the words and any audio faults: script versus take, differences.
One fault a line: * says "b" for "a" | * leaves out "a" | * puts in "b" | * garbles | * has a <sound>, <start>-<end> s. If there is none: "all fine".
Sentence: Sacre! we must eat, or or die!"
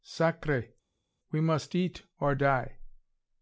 * leaves out "or"